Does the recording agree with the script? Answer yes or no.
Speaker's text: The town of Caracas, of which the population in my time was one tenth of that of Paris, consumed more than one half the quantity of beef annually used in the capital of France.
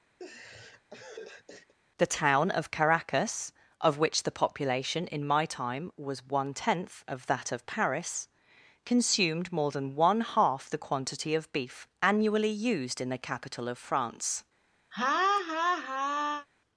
yes